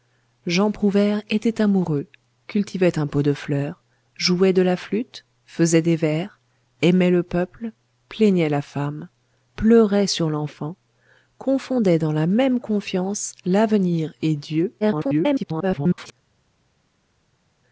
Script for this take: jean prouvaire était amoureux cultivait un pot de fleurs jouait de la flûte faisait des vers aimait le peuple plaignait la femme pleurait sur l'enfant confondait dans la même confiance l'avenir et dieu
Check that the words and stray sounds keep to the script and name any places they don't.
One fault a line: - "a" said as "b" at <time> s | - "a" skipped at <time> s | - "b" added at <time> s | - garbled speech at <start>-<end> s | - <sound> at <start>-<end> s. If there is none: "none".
- garbled speech at 14.8-16.1 s